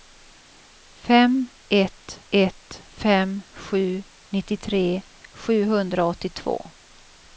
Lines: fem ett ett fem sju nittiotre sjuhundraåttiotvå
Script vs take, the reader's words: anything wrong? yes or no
no